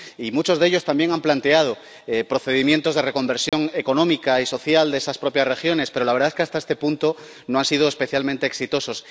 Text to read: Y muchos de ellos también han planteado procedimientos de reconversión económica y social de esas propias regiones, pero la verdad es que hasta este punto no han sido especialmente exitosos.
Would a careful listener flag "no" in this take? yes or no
no